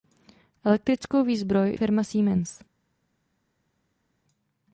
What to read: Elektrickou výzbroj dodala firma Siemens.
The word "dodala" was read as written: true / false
false